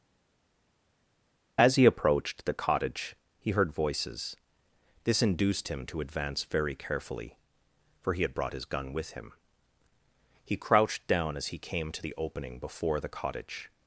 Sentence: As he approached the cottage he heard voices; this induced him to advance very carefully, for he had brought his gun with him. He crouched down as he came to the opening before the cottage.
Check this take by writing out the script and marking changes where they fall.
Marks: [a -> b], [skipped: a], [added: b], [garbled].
As he approached the cottage he heard voices; this induced him to advance very carefully, for he had brought his gun with him. He crouched down as he came to the opening before the cottage.